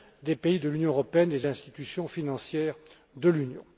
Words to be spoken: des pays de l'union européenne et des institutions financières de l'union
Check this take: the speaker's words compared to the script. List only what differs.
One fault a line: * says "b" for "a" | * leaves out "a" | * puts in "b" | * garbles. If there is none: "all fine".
all fine